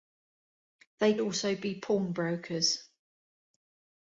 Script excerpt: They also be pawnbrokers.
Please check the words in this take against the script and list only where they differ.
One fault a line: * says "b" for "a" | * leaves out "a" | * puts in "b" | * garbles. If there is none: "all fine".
all fine